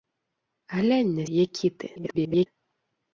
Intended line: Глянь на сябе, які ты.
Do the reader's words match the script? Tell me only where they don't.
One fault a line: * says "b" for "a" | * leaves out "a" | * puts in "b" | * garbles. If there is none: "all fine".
* leaves out "сябе"
* garbles